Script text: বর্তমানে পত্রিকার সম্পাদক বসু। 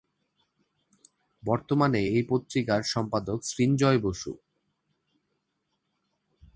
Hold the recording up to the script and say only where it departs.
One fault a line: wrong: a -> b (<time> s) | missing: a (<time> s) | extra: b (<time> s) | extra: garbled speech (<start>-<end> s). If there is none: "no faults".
extra: এই (2.1 s)
extra: সৃঞ্জয় (3.4 s)